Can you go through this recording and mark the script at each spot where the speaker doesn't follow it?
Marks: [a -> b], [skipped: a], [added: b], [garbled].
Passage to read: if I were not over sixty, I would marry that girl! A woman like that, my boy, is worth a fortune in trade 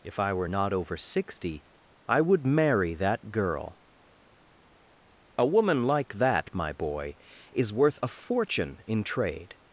if I were not over sixty, I would marry that girl! A woman like that, my boy, is worth a fortune in trade